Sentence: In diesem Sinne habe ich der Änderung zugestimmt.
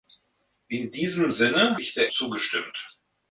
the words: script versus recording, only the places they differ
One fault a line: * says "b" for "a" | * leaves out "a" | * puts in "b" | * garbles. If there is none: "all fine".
* leaves out "habe"
* leaves out "Änderung"